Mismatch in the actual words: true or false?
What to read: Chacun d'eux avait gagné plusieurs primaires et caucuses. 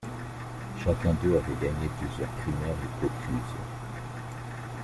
false